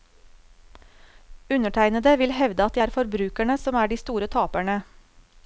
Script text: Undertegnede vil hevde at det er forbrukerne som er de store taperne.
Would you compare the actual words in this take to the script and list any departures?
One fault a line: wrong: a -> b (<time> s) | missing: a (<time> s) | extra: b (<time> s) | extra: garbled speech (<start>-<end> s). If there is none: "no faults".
no faults